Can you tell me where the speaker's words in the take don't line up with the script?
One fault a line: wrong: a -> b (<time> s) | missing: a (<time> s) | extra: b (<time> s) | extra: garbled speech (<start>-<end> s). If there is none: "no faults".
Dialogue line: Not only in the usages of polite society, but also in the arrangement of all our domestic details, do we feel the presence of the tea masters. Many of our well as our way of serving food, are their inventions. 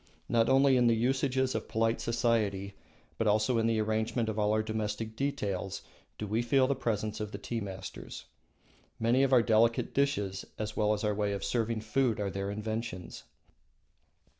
extra: delicate dishes as (9.4 s)